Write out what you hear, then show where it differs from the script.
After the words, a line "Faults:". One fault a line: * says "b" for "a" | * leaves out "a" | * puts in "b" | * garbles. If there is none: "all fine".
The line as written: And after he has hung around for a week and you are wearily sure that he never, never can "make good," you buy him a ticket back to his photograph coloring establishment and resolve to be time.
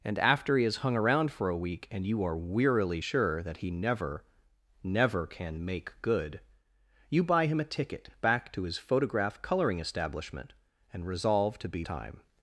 And after he has hung around for a week and you are wearily sure that he never, never can "make good," you buy him a ticket back to his photograph coloring establishment and resolve to be time.
Faults:
all fine